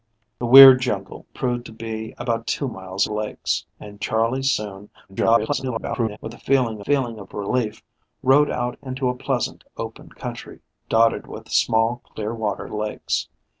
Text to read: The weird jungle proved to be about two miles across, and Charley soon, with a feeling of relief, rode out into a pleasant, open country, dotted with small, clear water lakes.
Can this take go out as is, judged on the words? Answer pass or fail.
fail